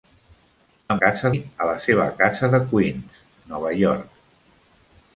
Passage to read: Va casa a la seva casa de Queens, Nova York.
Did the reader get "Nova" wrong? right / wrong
right